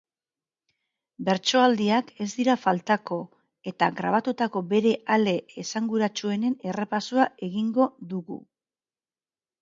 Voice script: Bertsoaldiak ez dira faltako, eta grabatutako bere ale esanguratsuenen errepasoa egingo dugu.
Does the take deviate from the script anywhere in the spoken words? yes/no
no